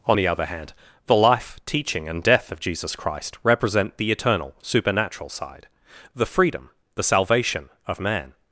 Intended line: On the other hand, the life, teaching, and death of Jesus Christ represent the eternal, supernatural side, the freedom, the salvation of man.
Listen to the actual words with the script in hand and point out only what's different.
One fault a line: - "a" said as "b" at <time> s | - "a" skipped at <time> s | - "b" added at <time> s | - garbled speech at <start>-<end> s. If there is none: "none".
none